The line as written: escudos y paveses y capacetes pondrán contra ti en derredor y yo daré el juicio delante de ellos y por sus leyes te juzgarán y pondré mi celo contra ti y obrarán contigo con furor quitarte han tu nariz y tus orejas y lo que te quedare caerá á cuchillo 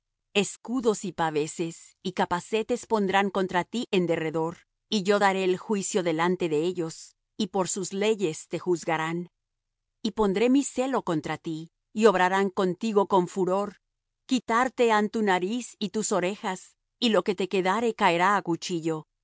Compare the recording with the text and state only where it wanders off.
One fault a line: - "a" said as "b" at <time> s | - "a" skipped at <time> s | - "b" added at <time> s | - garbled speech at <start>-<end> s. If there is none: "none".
none